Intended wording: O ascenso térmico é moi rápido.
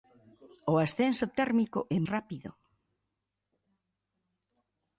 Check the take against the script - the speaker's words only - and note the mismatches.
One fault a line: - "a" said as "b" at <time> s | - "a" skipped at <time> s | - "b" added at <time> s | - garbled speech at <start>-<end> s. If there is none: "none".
- "moi" skipped at 2.0 s